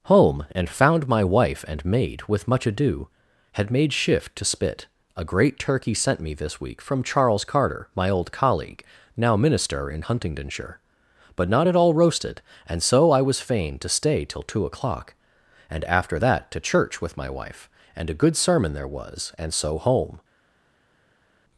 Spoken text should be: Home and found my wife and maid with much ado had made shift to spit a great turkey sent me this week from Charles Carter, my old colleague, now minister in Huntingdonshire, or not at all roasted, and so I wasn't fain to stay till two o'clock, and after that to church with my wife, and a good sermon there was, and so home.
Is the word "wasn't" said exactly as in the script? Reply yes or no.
no